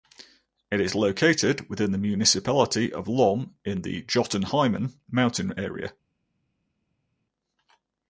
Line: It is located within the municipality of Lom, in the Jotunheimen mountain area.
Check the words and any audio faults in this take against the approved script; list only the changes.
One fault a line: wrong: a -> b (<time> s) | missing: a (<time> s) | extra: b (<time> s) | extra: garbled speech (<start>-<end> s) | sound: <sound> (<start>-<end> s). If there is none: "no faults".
no faults